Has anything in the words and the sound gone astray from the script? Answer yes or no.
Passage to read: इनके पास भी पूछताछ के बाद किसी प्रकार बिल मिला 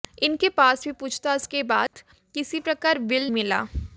yes